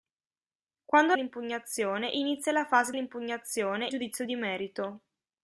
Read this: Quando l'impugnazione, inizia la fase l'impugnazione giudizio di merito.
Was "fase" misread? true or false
false